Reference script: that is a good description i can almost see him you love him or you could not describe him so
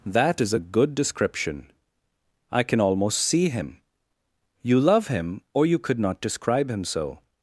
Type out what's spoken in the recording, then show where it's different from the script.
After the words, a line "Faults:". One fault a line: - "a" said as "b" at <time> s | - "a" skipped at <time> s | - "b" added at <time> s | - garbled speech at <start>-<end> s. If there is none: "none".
that is a good description i can almost see him you love him or you could not describe him so
Faults:
none